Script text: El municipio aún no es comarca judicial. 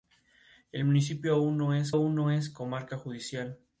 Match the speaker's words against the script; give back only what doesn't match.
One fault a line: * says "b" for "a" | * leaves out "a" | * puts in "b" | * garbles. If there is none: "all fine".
* puts in "aún no es"